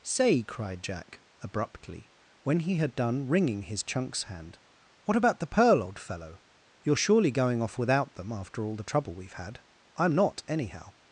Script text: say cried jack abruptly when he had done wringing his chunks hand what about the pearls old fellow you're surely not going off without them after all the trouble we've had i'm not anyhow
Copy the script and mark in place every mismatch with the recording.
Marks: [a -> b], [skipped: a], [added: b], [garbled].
say cried jack abruptly when he had done wringing his chunks hand what about the [pearls -> pearl] old fellow you're surely [skipped: not] going off without them after all the trouble we've had i'm not anyhow